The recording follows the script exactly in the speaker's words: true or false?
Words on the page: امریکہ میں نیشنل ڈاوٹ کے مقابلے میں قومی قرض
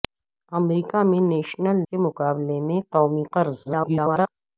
false